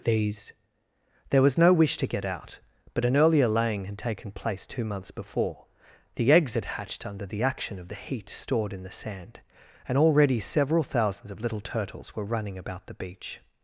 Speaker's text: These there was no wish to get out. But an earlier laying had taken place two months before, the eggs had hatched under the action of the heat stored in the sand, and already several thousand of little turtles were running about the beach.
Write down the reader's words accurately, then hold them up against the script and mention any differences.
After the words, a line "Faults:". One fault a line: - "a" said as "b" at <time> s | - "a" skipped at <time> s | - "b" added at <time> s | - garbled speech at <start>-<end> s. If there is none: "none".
These there was no wish to get out. But an earlier laying had taken place two months before, the eggs had hatched under the action of the heat stored in the sand, and already several thousands of little turtles were running about the beach.
Faults:
- "thousand" said as "thousands" at 10.8 s